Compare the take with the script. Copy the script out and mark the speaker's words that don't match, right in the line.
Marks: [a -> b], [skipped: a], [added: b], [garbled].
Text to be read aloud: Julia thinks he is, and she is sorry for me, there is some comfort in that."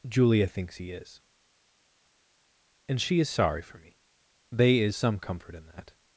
Julia thinks he is, and she is sorry for me, [there -> they] is some comfort in that."